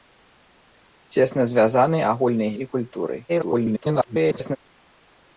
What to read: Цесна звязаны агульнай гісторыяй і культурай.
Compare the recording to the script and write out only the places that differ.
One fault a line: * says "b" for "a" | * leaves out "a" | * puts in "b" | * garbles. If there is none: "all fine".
* leaves out "гісторыяй"
* garbles